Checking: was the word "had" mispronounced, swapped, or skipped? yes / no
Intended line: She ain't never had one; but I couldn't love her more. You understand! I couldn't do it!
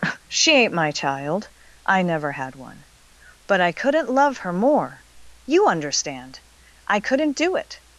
no